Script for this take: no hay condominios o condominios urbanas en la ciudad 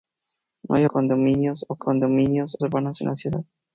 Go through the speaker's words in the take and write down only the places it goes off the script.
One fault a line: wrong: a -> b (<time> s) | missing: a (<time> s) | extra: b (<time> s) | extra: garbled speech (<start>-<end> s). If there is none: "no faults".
no faults